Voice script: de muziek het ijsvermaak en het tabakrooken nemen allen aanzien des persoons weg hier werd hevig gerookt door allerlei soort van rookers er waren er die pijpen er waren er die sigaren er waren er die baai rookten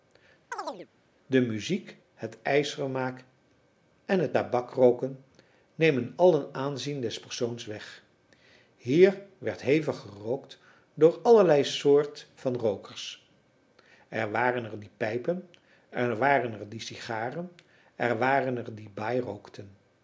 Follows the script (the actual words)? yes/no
yes